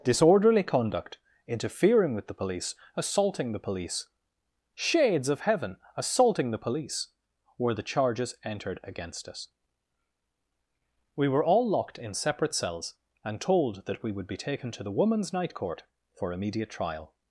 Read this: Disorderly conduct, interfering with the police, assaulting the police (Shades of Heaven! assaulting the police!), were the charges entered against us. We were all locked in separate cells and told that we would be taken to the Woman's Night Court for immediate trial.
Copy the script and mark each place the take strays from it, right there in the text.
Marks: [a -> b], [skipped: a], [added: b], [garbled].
Disorderly conduct, interfering with the police, assaulting the police (Shades of Heaven! assaulting the police!), were the charges entered against us. We were all locked in separate cells and told that we would be taken to the Woman's Night Court for immediate trial.